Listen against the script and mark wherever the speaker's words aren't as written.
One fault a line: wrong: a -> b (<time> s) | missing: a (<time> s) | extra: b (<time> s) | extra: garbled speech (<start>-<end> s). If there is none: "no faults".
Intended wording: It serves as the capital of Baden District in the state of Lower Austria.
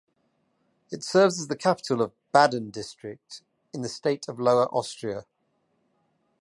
no faults